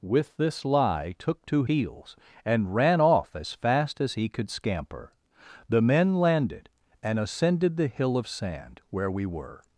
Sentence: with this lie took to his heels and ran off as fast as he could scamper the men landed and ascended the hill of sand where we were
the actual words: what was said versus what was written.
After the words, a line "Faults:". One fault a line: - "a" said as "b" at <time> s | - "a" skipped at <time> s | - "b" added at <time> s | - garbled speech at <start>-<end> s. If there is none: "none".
with this lie took to heels and ran off as fast as he could scamper the men landed and ascended the hill of sand where we were
Faults:
- "his" skipped at 1.6 s